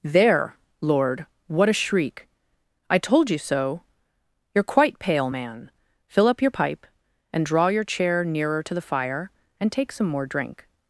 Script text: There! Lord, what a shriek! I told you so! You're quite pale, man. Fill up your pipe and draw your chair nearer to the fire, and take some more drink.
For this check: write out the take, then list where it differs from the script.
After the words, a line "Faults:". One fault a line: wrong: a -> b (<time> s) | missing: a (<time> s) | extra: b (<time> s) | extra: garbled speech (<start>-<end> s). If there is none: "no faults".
There! Lord, what a shriek! I told you so! You're quite pale, man. Fill up your pipe and draw your chair nearer to the fire, and take some more drink.
Faults:
no faults